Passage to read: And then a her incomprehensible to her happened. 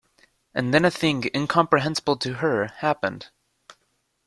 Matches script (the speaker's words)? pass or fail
fail